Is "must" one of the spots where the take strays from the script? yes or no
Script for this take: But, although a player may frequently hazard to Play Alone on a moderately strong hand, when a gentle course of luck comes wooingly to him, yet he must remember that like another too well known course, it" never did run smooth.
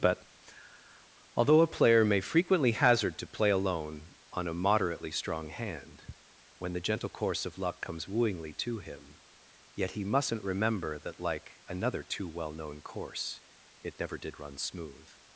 yes